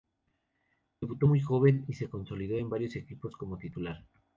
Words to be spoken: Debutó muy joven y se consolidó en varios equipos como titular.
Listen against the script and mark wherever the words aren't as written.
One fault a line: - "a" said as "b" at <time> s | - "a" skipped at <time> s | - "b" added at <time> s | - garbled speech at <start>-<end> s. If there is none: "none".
none